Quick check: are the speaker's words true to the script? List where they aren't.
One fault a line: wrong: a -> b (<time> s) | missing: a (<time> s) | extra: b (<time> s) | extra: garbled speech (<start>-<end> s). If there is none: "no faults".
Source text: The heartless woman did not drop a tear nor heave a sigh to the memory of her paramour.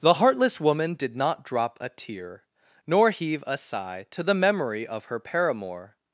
no faults